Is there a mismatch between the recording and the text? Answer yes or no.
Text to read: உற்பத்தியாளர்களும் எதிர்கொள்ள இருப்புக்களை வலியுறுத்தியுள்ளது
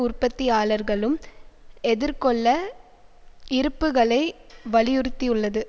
no